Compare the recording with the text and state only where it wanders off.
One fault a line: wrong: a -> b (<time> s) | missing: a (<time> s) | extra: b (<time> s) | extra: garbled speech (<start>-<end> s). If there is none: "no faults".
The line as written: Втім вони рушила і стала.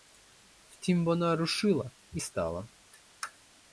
wrong: вони -> вона (1.0 s)